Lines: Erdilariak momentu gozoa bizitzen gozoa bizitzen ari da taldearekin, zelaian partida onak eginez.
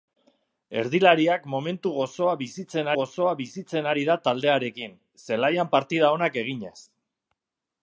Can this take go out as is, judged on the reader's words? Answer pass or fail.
pass